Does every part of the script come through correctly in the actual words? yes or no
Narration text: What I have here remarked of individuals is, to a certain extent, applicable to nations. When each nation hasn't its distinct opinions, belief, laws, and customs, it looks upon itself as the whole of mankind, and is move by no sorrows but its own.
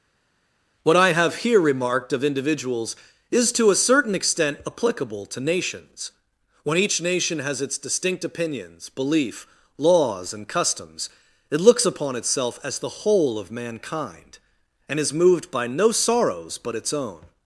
no